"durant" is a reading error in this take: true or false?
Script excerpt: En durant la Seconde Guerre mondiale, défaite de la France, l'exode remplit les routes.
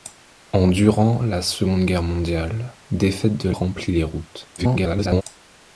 false